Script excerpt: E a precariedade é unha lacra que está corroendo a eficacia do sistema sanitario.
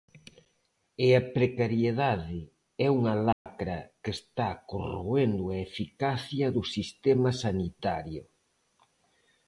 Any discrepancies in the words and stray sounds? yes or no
yes